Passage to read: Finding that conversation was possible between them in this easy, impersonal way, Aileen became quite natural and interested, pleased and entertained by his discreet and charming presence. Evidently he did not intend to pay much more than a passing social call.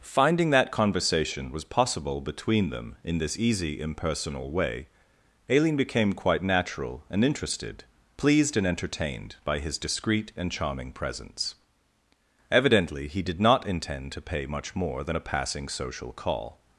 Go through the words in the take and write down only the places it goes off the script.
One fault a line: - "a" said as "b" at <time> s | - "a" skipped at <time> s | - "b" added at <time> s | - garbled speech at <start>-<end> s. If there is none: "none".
none